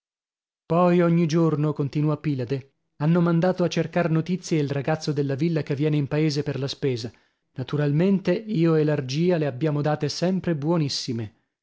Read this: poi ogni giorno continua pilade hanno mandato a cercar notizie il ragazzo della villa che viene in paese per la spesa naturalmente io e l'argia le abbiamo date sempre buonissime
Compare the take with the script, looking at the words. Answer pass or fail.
pass